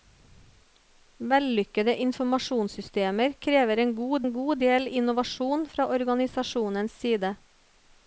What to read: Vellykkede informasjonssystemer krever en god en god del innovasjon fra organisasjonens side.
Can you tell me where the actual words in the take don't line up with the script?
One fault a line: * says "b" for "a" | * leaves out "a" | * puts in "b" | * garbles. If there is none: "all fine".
all fine